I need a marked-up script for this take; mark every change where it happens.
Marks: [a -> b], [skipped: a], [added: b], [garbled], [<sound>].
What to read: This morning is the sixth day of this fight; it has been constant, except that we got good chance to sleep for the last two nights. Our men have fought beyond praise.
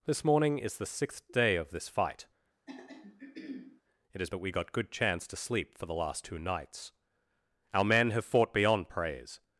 This morning is the sixth day of this fight; [throat clearing] it has [skipped: been constant, except] that we got good chance to sleep for the last two nights. Our men have fought beyond praise.